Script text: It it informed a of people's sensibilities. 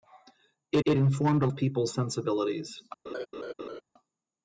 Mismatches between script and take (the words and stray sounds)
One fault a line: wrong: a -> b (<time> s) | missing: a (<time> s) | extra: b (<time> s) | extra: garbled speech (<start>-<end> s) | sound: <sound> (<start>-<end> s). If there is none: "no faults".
sound: laugh (3.1-3.8 s)